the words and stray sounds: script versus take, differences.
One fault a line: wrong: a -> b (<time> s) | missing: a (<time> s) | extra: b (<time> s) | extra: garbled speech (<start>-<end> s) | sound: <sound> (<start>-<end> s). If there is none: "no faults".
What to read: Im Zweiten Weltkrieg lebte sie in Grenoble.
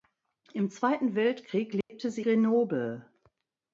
sound: dropout (1.8-1.9 s)
missing: in (2.3 s)